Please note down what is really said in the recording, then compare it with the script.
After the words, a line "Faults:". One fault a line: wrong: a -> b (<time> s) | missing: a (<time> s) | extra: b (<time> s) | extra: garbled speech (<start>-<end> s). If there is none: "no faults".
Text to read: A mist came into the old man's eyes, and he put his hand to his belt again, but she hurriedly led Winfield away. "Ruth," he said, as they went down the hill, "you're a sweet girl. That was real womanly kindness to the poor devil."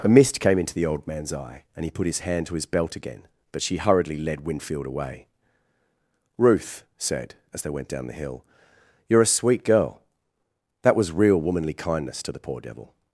A mist came into the old man's eye, and he put his hand to his belt again, but she hurriedly led Winfield away. "Ruth," said, as they went down the hill, "you're a sweet girl. That was real womanly kindness to the poor devil."
Faults:
wrong: eyes -> eye (1.3 s)
missing: he (6.8 s)